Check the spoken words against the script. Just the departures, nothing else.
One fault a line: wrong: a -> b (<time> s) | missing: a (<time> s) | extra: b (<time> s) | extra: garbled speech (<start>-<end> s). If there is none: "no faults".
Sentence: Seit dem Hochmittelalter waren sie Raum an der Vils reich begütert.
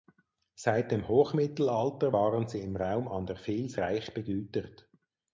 extra: im (2.6 s)